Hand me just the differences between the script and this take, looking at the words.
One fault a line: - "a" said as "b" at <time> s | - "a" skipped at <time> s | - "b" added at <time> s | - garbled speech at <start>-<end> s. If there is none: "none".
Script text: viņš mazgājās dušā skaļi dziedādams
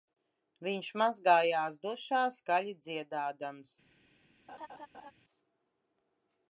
none